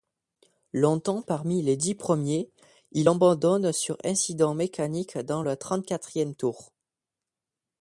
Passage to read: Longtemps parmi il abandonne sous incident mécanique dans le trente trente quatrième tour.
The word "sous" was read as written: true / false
false